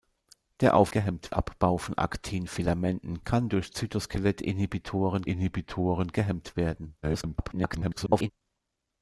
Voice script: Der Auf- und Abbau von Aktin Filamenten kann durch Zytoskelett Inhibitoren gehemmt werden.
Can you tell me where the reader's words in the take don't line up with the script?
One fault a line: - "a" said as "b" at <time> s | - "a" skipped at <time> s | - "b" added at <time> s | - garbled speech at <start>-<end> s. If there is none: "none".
- "und" said as "gehemmt" at 0.9 s
- "Inhibitoren" added at 5.2 s
- garbled speech at 7.0-8.3 s